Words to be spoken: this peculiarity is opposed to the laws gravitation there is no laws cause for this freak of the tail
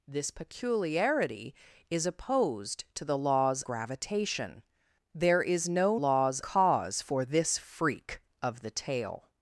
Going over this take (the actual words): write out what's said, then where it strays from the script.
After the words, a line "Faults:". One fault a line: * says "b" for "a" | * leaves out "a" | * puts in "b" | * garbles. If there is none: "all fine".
this peculiarity is opposed to the laws gravitation there is no laws cause for this freak of the tail
Faults:
all fine